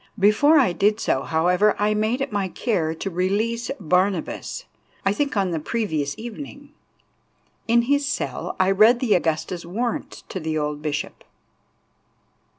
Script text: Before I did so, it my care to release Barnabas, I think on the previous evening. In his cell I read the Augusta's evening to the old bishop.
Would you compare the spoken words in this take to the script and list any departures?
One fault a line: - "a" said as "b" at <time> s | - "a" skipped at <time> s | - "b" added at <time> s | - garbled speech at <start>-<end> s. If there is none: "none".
- "however I made" added at 1.2 s
- "evening" said as "warrant" at 9.7 s